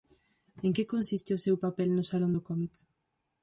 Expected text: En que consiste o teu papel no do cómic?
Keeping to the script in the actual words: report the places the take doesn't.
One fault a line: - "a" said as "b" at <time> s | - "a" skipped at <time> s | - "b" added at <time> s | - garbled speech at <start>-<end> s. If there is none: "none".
- "teu" said as "seu" at 1.4 s
- "salón" added at 2.1 s